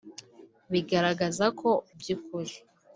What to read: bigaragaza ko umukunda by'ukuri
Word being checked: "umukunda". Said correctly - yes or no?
no